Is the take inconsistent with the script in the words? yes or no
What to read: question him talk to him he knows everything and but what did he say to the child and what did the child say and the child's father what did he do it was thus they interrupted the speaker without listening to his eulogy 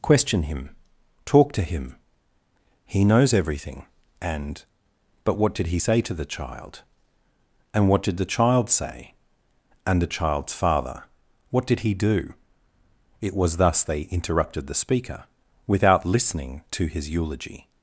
no